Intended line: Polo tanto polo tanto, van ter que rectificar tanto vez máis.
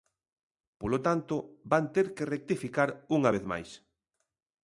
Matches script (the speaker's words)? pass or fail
fail